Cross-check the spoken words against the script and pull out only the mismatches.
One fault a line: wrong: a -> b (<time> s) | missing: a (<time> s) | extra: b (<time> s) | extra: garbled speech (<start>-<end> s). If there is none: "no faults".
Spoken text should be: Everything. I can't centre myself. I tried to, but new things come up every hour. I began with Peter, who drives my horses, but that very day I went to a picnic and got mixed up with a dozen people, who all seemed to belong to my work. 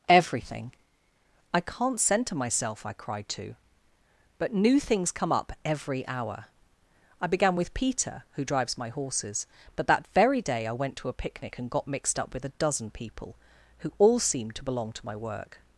wrong: tried -> cried (2.9 s)